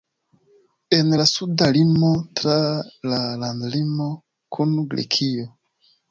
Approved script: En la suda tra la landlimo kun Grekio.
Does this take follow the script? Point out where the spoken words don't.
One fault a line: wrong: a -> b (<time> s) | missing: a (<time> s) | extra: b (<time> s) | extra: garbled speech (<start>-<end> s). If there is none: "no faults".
extra: limo (1.8 s)